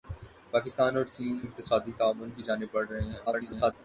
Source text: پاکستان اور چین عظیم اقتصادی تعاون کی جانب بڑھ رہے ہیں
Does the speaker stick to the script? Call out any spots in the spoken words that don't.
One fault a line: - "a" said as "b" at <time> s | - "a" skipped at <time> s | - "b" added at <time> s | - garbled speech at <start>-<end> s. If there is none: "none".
- "عظیم" skipped at 1.4 s
- garbled speech at 3.3-3.7 s